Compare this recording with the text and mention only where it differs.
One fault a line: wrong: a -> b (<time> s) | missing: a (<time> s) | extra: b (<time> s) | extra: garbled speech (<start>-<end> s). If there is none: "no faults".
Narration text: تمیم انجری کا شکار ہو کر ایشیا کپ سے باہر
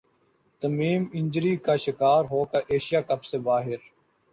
no faults